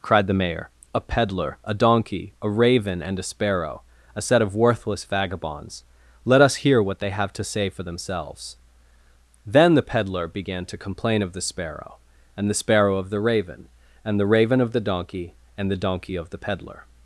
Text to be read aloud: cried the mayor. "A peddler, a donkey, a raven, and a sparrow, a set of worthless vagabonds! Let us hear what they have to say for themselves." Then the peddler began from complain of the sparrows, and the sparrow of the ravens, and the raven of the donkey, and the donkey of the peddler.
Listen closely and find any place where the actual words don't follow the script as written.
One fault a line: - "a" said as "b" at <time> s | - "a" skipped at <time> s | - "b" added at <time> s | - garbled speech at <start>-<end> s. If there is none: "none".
- "from" said as "to" at 10.7 s
- "sparrows" said as "sparrow" at 11.4 s
- "ravens" said as "raven" at 13.2 s